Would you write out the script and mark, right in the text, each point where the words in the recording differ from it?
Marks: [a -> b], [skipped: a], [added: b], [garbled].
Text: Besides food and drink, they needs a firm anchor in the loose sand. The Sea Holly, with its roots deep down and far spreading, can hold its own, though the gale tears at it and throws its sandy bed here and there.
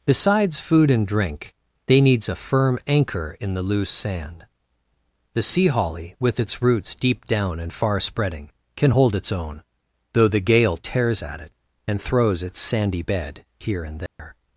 Besides food and drink, they needs a firm anchor in the loose sand. The Sea Holly, with its roots deep down and far spreading, can hold its own, though the gale tears at it and throws its sandy bed here and there.